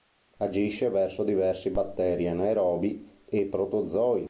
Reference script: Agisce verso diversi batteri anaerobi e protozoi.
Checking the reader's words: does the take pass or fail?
pass